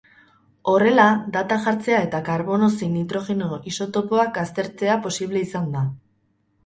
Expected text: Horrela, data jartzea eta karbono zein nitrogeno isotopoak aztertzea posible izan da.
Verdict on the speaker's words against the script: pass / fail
pass